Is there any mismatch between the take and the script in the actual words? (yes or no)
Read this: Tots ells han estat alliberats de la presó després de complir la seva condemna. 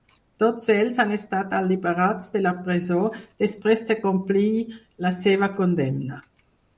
no